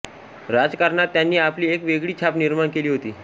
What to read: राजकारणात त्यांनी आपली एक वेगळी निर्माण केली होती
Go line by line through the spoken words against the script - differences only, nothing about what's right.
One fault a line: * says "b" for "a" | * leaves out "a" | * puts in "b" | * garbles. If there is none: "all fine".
* puts in "छाप"